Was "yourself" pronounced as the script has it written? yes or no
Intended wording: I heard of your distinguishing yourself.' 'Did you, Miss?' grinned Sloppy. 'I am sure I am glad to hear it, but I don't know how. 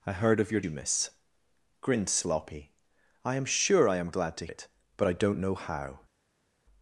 no